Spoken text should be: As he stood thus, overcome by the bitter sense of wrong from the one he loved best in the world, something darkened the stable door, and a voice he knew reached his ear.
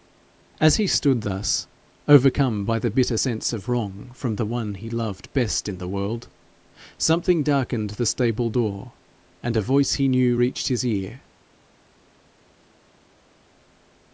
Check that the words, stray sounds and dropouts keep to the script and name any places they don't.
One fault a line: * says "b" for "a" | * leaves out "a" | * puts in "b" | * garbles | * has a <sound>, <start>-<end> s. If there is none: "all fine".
all fine